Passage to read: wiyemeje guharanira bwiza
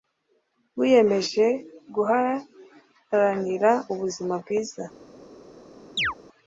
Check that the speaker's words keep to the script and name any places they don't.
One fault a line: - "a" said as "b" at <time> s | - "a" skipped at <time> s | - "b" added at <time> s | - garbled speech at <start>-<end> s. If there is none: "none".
- "ubuzima" added at 3.9 s